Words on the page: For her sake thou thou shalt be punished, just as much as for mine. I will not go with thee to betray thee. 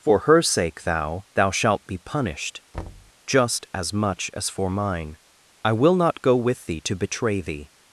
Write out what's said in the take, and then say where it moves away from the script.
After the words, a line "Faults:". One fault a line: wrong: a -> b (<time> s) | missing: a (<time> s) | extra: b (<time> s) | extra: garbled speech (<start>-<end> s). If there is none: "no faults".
For her sake thou thou shalt be punished, just as much as for mine. I will not go with thee to betray thee.
Faults:
no faults